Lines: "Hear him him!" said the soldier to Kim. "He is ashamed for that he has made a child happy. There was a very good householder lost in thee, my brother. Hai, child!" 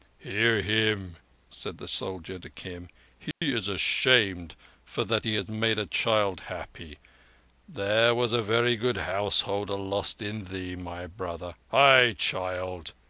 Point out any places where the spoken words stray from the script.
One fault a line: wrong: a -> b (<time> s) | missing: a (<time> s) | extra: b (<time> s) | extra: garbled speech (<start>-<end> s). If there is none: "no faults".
missing: him (1.2 s)